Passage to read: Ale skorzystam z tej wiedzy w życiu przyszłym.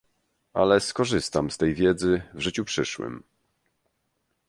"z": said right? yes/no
yes